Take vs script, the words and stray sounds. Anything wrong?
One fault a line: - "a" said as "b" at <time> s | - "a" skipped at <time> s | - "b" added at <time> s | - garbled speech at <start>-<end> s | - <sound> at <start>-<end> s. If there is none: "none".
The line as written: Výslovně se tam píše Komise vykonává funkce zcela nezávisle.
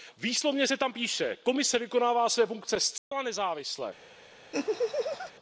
- "své" added at 2.3 s
- dropout at 3.0-3.1 s
- laugh at 4.5-5.3 s